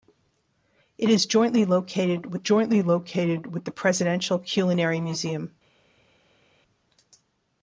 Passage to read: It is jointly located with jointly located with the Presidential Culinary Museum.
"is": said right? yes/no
yes